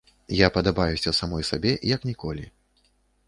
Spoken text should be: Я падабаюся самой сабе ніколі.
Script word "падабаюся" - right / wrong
right